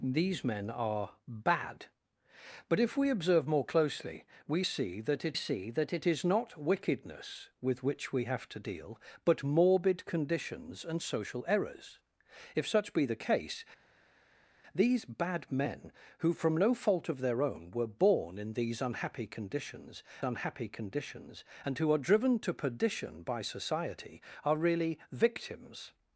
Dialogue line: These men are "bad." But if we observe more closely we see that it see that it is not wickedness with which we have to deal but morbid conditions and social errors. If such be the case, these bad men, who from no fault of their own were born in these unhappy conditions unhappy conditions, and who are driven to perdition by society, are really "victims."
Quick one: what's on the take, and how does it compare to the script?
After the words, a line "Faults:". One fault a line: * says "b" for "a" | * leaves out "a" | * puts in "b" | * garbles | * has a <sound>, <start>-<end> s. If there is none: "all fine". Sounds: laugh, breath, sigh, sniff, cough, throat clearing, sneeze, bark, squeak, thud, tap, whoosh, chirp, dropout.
These men are "bad." But if we observe more closely we see that it see that it is not wickedness with which we have to deal but morbid conditions and social errors. If such be the case, these bad men, who from no fault of their own were born in these unhappy conditions unhappy conditions, and who are driven to perdition by society, are really "victims."
Faults:
all fine